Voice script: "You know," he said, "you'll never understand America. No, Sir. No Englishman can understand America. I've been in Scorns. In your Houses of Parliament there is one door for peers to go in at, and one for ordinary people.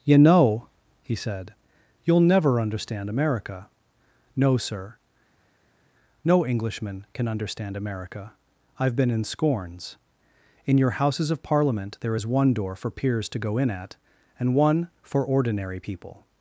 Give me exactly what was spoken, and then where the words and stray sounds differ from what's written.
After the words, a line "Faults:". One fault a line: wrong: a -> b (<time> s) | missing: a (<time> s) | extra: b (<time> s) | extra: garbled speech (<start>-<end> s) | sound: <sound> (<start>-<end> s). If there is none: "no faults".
"You know," he said, "you'll never understand America. No, Sir. No Englishman can understand America. I've been in Scorns. In your Houses of Parliament there is one door for peers to go in at, and one for ordinary people.
Faults:
no faults